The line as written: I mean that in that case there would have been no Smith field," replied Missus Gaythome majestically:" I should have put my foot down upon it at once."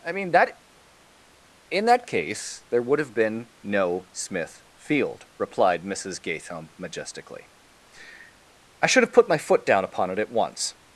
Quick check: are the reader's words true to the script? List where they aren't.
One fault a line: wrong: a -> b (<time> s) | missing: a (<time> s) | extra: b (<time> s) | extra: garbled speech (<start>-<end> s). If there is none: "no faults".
no faults